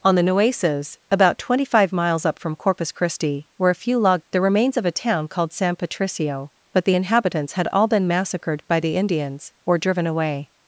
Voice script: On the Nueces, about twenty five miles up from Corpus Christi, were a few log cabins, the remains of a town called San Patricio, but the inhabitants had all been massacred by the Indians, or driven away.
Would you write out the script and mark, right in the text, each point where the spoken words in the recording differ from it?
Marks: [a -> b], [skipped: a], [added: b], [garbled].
On the Nueces, about twenty five miles up from Corpus Christi, were a few log [skipped: cabins,] the remains of a town called San Patricio, but the inhabitants had all been massacred by the Indians, or driven away.